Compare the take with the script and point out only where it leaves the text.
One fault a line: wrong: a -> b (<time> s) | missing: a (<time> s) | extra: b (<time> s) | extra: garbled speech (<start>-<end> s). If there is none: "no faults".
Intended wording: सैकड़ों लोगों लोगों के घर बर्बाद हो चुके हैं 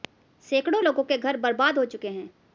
missing: लोगों (1.0 s)